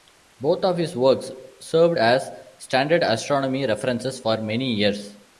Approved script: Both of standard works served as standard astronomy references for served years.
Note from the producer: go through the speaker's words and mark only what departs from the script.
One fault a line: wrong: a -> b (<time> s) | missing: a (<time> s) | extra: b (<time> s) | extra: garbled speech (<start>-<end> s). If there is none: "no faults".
wrong: standard -> his (0.8 s)
wrong: served -> many (4.4 s)